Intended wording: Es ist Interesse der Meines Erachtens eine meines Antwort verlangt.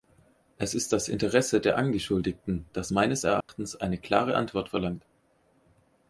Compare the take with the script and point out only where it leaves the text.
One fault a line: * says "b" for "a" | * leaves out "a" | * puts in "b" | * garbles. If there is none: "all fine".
* puts in "das"
* puts in "Angeschuldigten das"
* says "klare" for "meines"